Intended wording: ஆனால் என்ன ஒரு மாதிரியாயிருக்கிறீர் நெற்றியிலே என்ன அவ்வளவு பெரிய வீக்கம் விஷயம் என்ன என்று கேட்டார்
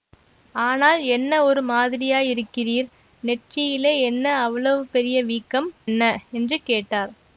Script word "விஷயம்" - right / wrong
wrong